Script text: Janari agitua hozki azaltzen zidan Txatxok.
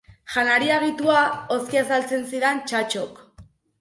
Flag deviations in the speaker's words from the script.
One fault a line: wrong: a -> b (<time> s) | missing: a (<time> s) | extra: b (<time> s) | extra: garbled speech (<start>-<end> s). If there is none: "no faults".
no faults